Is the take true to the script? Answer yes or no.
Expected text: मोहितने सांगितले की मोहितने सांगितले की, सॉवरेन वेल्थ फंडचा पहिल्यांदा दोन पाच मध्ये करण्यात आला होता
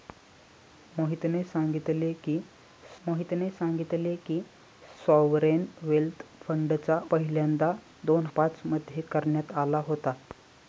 yes